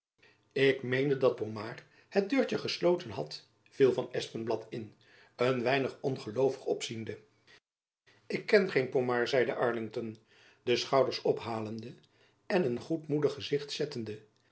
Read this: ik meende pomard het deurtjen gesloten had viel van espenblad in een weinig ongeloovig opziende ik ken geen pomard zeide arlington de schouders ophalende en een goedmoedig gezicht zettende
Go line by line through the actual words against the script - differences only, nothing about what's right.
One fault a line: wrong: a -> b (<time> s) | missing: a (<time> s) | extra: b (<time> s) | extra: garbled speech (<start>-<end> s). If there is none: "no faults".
extra: dat (1.2 s)